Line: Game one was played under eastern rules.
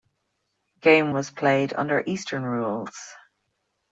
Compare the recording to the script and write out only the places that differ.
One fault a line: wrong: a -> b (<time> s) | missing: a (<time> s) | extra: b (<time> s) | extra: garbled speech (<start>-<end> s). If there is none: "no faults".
missing: one (1.1 s)